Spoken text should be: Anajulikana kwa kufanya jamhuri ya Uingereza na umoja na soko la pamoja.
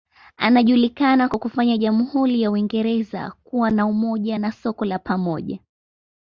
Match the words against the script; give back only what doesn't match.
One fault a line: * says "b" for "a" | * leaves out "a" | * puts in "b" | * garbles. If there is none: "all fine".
* puts in "kuwa"